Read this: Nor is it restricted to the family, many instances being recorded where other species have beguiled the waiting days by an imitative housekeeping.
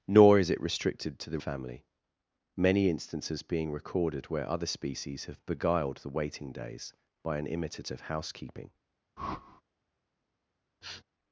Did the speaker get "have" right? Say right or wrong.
right